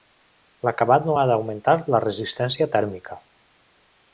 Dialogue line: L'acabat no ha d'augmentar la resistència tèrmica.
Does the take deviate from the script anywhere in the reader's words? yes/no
no